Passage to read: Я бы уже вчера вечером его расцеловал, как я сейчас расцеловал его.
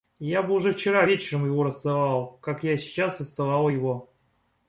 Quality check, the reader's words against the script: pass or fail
pass